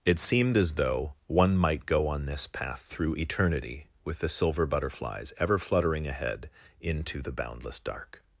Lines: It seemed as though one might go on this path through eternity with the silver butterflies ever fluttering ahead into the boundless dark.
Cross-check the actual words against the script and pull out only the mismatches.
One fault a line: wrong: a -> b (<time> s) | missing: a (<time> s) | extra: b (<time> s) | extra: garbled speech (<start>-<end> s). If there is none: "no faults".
no faults